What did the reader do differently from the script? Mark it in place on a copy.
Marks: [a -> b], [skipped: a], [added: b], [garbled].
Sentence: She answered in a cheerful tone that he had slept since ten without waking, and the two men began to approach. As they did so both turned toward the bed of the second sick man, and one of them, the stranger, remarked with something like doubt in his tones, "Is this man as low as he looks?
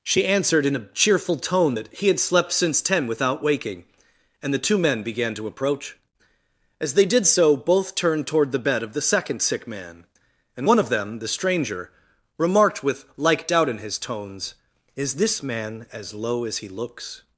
She answered in a cheerful tone that he had slept since ten without waking, and the two men began to approach. As they did so both turned toward the bed of the second sick man, and one of them, the stranger, remarked with [skipped: something] like doubt in his tones, "Is this man as low as he looks?